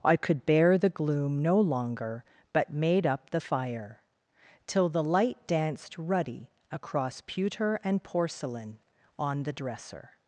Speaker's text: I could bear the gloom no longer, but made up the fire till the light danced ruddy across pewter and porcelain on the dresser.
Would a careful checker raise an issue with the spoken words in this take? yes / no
no